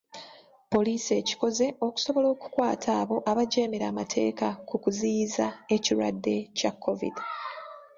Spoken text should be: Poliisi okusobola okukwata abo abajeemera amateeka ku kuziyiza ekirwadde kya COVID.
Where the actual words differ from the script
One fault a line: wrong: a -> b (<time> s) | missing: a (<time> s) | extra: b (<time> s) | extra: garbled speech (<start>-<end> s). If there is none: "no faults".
extra: ekikoze (1.2 s)